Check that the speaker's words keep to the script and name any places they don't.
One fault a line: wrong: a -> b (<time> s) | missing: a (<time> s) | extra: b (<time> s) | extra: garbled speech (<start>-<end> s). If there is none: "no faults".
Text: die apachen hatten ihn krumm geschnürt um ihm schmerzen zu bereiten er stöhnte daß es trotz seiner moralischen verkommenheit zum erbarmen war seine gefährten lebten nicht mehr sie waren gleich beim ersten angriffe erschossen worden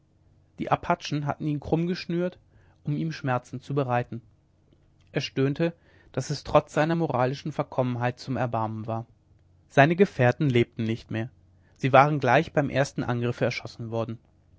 no faults